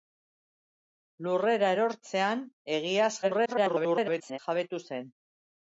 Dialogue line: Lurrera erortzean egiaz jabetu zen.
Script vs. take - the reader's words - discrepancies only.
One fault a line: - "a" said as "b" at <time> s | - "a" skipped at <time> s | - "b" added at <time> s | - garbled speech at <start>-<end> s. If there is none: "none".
- garbled speech at 3.2-4.4 s